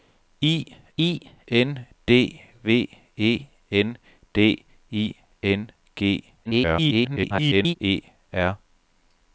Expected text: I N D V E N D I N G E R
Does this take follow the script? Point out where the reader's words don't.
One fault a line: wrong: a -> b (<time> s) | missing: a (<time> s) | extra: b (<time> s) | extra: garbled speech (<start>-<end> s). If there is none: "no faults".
extra: I (1.0 s)
extra: garbled speech (6.5-7.8 s)